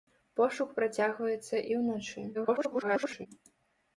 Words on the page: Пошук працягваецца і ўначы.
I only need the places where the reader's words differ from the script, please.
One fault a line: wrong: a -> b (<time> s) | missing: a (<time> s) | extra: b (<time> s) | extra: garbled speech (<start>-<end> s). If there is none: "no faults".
extra: garbled speech (2.3-3.3 s)